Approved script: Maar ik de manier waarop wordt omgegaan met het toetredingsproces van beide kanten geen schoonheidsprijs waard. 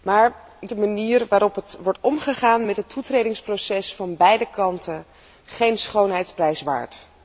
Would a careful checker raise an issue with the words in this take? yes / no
no